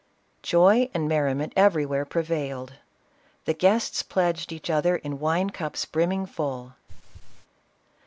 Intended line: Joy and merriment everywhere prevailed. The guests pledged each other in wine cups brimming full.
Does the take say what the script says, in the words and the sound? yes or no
no